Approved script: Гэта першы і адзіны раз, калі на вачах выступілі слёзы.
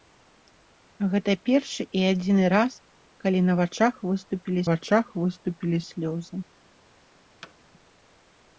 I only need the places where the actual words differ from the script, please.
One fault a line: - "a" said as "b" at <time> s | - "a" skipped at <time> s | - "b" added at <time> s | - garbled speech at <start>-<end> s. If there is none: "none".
- "вачах выступілі" added at 4.7 s